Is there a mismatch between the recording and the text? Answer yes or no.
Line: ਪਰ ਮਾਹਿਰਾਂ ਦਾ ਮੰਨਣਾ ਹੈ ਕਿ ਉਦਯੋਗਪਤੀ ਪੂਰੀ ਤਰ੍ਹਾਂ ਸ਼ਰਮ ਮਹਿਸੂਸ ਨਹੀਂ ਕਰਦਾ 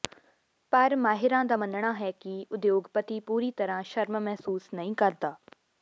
no